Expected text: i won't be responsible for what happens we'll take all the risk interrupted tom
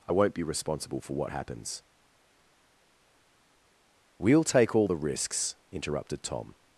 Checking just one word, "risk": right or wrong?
wrong